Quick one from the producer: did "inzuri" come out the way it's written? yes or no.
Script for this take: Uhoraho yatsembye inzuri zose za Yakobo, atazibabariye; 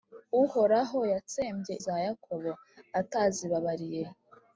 no